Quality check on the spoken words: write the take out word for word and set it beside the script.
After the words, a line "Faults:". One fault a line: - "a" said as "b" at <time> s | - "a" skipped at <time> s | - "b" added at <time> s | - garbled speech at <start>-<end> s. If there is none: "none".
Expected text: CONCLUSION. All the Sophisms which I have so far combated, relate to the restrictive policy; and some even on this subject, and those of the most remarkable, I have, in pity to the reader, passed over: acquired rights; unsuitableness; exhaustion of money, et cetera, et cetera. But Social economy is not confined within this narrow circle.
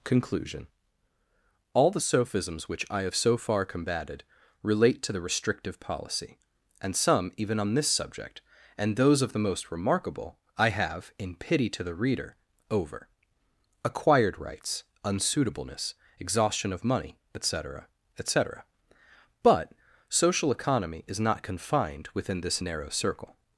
CONCLUSION. All the Sophisms which I have so far combated, relate to the restrictive policy; and some even on this subject, and those of the most remarkable, I have, in pity to the reader, over: acquired rights; unsuitableness; exhaustion of money, et cetera, et cetera. But Social economy is not confined within this narrow circle.
Faults:
- "passed" skipped at 12.3 s